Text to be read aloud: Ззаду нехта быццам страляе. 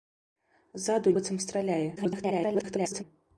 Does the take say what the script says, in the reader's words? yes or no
no